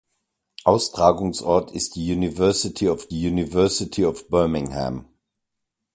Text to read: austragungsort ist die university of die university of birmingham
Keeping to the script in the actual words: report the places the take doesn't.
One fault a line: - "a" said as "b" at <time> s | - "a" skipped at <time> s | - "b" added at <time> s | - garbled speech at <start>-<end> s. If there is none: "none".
none